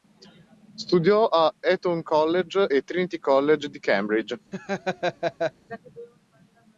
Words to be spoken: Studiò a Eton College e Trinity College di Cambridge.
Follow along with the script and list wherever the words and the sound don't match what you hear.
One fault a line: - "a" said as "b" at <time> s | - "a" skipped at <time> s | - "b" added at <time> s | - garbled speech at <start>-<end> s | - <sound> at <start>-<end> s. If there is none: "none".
- laugh at 4.5-5.5 s